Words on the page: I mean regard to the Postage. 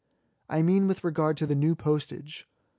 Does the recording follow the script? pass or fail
fail